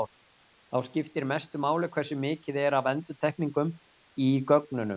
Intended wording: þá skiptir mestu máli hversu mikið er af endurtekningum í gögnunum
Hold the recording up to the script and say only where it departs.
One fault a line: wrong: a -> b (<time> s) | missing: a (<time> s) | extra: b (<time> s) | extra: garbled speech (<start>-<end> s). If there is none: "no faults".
no faults